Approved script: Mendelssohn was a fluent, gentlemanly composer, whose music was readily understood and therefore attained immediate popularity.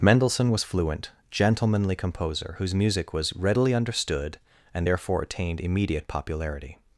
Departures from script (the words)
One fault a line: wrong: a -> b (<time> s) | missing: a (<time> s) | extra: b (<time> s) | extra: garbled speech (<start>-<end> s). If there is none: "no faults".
missing: a (0.6 s)